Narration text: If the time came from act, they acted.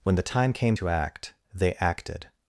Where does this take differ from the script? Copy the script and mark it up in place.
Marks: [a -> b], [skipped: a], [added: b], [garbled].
[If -> When] the time came [from -> to] act, they acted.